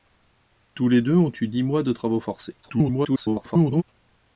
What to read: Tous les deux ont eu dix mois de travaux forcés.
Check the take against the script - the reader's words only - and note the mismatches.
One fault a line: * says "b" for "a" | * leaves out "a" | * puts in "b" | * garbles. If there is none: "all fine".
* garbles